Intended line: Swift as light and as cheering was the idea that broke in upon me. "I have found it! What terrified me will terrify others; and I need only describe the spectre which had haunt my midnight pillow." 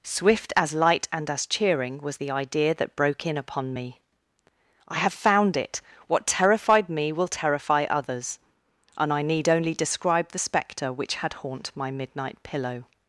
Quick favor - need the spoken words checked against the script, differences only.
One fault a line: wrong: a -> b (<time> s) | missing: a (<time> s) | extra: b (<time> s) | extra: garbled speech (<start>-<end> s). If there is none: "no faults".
no faults